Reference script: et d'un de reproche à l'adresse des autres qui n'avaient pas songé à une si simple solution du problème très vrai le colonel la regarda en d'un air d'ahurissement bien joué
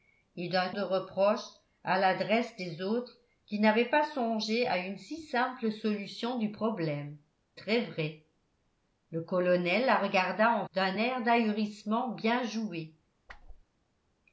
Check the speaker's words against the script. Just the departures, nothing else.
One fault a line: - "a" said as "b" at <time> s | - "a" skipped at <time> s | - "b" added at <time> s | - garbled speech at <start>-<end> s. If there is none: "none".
none